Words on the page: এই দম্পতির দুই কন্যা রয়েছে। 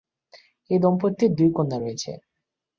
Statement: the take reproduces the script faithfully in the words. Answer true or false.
true